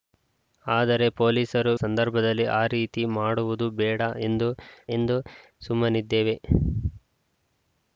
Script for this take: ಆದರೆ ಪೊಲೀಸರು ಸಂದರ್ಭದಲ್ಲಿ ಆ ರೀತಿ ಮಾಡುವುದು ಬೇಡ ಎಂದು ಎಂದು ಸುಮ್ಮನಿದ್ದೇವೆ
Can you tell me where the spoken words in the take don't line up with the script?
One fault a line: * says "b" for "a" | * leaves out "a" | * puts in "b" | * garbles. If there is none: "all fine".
all fine